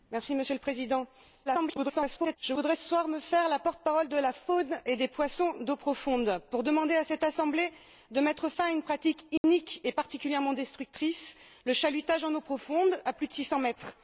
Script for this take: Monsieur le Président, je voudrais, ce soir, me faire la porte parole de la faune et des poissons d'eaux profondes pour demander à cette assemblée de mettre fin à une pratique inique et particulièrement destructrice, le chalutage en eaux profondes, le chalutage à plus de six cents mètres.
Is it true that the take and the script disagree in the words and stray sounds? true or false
true